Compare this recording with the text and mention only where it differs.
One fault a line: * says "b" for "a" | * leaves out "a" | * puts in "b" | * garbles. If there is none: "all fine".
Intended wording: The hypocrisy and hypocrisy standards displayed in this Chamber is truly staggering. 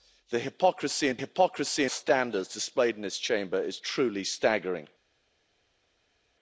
all fine